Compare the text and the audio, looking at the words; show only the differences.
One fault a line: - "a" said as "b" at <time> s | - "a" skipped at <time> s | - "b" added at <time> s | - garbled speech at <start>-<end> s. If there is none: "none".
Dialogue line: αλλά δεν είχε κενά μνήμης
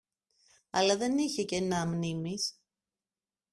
none